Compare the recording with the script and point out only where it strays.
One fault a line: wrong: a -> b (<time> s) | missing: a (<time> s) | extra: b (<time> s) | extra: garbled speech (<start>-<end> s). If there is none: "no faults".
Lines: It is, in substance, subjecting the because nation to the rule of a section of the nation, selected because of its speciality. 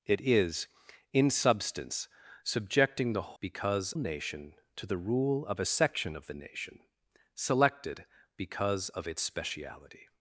no faults